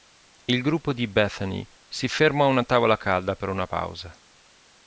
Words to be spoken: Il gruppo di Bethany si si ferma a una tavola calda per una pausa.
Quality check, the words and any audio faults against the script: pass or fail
fail